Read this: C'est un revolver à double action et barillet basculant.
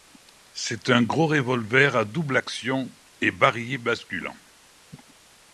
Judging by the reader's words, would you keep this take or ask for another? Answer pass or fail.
fail